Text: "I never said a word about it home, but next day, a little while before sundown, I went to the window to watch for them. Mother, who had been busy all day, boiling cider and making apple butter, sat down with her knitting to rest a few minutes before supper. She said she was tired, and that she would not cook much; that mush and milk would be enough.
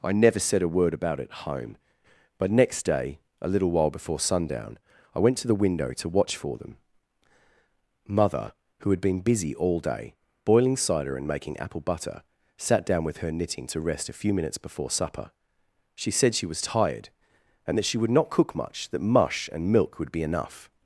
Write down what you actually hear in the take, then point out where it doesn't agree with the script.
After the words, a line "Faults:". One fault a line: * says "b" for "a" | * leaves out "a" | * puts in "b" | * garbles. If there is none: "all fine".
"I never said a word about it home, but next day, a little while before sundown, I went to the window to watch for them. Mother, who had been busy all day, boiling cider and making apple butter, sat down with her knitting to rest a few minutes before supper. She said she was tired, and that she would not cook much; that mush and milk would be enough.
Faults:
all fine